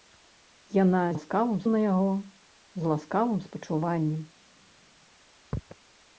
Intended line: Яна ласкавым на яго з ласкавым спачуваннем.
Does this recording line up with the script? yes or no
yes